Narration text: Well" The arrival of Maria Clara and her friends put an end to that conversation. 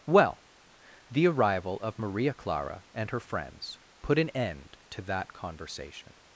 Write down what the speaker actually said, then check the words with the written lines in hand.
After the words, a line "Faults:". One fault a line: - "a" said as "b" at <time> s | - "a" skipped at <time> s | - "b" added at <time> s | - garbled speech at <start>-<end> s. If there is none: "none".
Well" The arrival of Maria Clara and her friends put an end to that conversation.
Faults:
none